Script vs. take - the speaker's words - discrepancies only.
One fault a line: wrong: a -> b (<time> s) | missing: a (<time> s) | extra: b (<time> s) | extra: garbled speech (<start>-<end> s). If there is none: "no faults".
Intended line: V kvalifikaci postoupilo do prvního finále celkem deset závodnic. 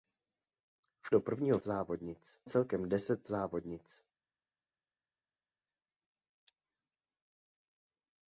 missing: kvalifikaci postoupilo (1.1 s)
wrong: finále -> závodnic (1.6 s)